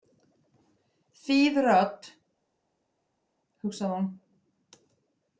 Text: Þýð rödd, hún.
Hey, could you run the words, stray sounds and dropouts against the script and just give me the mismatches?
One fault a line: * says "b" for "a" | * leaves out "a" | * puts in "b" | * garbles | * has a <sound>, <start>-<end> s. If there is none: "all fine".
* puts in "hugsaði"